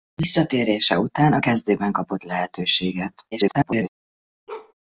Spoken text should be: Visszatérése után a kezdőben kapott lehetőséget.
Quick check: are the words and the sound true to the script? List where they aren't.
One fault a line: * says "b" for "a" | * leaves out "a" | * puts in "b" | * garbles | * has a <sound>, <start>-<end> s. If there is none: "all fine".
* garbles
* has a bark, 4.5-4.7 s